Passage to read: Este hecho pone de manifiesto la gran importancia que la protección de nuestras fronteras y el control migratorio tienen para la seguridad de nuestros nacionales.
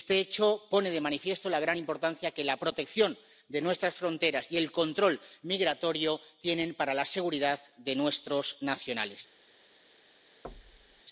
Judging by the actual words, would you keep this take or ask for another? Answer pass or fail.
pass